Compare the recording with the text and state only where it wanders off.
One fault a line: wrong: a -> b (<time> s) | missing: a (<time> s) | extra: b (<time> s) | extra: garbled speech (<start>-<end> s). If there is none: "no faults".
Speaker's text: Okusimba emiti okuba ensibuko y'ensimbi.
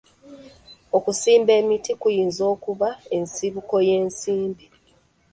extra: kuyinza (2.0 s)